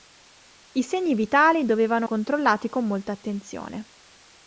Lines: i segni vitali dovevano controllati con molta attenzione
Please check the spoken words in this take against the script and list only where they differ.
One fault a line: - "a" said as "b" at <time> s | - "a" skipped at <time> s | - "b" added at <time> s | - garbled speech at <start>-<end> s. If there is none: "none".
none